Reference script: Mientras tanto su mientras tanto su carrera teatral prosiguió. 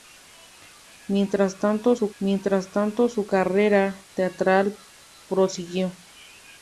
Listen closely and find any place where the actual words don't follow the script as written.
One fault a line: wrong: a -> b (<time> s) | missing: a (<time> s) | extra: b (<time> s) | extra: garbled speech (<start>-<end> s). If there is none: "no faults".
no faults